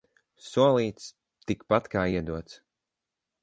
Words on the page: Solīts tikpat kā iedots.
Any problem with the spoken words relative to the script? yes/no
no